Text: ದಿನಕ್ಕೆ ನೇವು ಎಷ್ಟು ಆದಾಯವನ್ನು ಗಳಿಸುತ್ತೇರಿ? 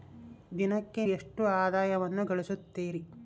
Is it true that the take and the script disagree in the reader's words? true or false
true